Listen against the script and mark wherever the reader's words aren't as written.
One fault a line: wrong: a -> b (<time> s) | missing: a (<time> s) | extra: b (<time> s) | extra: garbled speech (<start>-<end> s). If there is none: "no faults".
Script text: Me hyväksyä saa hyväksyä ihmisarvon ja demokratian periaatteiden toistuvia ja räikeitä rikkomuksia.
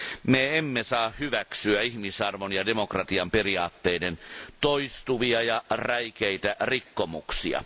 wrong: hyväksyä -> emme (0.6 s)